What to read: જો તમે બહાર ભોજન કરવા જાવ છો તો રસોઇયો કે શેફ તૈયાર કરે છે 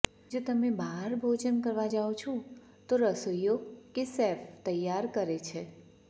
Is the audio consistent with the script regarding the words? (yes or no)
yes